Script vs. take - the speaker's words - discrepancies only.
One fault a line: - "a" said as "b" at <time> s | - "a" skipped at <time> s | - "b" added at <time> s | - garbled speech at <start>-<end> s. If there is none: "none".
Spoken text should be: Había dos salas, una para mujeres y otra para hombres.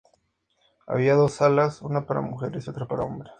none